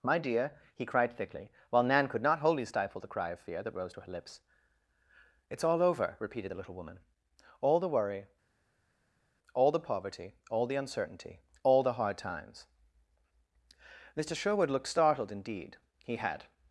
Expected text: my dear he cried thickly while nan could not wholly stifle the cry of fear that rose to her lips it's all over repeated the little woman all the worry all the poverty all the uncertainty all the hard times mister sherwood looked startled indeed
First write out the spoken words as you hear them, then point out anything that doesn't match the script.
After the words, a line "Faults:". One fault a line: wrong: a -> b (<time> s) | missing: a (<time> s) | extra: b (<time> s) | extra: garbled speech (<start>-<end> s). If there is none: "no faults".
my dear he cried thickly while nan could not wholly stifle the cry of fear that rose to her lips it's all over repeated the little woman all the worry all the poverty all the uncertainty all the hard times mister sherwood looked startled indeed he had
Faults:
extra: he had (16.0 s)